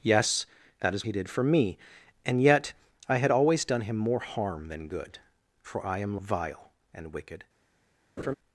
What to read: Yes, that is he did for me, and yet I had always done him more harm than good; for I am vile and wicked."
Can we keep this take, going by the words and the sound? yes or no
no